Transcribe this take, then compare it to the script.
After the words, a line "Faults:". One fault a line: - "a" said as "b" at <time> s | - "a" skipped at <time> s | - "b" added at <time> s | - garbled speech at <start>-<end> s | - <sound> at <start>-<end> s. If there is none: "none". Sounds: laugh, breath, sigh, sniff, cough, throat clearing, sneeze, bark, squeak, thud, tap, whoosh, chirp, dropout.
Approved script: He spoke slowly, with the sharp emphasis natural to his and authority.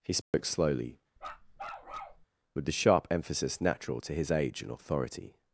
He spoke slowly, with the sharp emphasis natural to his age and authority.
Faults:
- dropout at 0.2-0.3 s
- bark at 1.2-2.3 s
- "age" added at 4.3 s